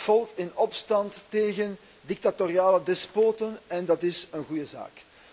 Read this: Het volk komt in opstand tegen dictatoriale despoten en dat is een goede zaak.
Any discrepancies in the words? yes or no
yes